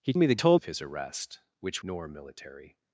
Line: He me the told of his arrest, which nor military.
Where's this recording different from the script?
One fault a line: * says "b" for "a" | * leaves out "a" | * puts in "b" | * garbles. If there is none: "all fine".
all fine